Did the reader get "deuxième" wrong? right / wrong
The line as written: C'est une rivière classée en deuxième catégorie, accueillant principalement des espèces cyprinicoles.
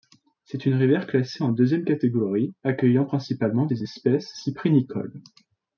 right